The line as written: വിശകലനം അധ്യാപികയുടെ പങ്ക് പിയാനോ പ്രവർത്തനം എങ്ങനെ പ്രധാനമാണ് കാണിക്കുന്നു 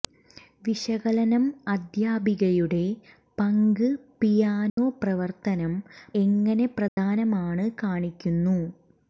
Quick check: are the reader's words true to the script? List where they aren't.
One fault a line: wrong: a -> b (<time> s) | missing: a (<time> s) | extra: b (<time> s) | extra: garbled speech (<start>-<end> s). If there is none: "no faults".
no faults